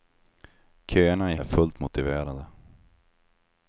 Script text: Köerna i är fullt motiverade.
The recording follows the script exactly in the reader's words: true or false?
true